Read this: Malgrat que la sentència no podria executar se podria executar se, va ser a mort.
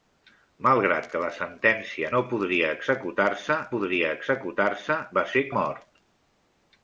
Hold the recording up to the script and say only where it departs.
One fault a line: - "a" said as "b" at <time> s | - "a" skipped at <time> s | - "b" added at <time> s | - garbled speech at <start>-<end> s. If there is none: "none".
none